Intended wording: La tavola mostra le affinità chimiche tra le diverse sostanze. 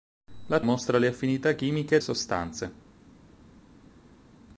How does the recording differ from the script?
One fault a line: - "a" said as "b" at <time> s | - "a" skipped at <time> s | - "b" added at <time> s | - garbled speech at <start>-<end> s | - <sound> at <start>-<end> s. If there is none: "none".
- "tavola" skipped at 0.6 s
- "tra le diverse" skipped at 2.0 s